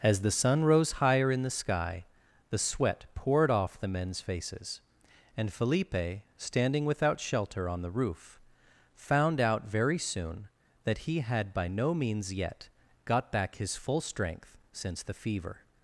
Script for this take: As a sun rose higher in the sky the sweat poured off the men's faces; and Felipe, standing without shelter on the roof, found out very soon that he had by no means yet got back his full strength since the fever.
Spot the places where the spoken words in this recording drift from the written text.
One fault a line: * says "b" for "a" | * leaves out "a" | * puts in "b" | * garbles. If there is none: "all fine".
* says "the" for "a"